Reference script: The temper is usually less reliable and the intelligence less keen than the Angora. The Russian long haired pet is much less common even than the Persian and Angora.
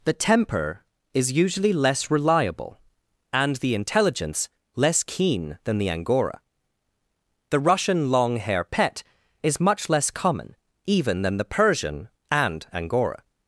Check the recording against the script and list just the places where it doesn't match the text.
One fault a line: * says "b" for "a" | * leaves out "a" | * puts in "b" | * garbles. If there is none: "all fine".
* says "hair" for "haired"